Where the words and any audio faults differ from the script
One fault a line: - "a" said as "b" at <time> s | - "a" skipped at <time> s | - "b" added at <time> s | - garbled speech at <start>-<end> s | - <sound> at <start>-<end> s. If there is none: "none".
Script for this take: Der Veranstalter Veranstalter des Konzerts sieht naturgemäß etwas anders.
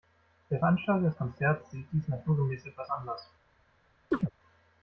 - "Veranstalter" skipped at 1.1 s
- "dies" added at 1.9 s
- chirp at 4.1-4.3 s